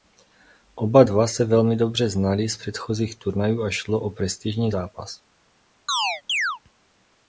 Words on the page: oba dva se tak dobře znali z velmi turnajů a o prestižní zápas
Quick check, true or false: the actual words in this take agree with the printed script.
false